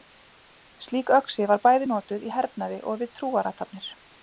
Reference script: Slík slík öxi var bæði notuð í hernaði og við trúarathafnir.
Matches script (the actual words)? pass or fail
fail